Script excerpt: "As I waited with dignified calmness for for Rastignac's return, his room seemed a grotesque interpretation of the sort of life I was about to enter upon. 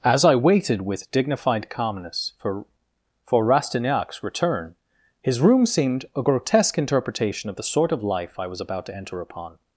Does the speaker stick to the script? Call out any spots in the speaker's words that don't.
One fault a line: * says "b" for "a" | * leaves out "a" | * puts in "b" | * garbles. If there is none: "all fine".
all fine